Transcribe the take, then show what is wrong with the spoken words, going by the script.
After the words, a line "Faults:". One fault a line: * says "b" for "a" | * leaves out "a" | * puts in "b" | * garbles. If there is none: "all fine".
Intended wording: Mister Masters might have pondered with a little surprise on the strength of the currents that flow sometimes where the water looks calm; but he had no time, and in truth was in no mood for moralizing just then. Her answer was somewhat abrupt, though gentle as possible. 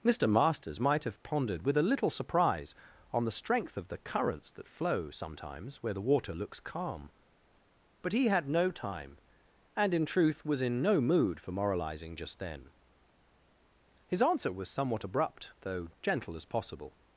Mister Masters might have pondered with a little surprise on the strength of the currents that flow sometimes where the water looks calm; but he had no time, and in truth was in no mood for moralizing just then. His answer was somewhat abrupt, though gentle as possible.
Faults:
* says "His" for "Her"